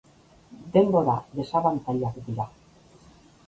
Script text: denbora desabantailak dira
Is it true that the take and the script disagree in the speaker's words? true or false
false